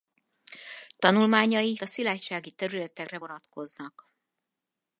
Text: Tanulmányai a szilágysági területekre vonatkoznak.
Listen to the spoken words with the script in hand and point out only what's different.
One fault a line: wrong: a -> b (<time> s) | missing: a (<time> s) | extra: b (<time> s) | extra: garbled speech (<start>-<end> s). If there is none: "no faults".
no faults